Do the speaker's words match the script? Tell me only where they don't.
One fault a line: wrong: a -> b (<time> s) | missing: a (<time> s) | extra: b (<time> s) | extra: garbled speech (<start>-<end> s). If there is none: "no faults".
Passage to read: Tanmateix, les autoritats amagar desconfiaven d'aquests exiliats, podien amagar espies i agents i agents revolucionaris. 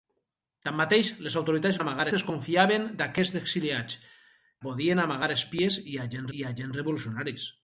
no faults